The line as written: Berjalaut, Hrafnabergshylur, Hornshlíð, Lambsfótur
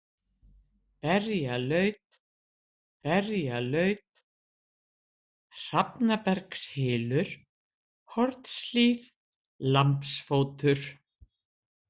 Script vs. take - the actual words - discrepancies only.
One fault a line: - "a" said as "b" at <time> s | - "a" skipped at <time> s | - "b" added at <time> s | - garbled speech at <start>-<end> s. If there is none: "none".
- "berjalaut" added at 3.0 s